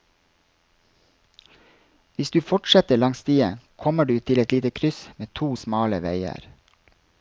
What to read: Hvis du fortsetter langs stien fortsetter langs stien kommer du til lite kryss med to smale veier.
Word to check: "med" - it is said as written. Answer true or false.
true